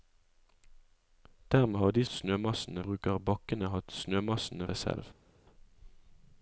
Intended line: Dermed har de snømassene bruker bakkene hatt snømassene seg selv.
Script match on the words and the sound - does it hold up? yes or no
yes